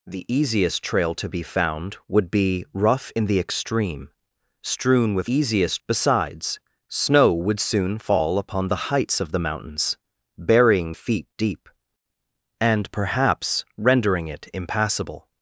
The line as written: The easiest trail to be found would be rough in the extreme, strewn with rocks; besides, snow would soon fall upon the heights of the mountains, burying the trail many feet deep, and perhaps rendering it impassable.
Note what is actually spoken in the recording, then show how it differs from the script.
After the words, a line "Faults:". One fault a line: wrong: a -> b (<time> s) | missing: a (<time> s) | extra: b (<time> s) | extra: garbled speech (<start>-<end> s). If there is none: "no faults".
The easiest trail to be found would be rough in the extreme, strewn with easiest; besides, snow would soon fall upon the heights of the mountains, burying feet deep, and perhaps rendering it impassable.
Faults:
wrong: rocks -> easiest (5.3 s)
missing: the trail many (10.9 s)